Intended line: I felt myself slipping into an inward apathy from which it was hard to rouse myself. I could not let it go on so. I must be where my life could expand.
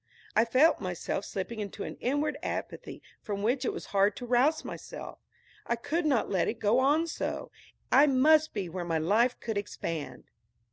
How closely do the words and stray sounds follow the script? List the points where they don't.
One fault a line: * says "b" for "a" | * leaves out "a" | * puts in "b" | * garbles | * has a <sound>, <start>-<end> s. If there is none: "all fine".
all fine